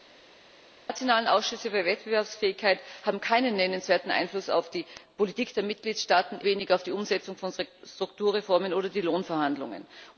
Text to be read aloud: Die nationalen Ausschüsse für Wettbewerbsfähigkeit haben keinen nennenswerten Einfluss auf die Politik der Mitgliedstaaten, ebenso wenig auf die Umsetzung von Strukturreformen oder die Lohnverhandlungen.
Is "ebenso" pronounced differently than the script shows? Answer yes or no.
yes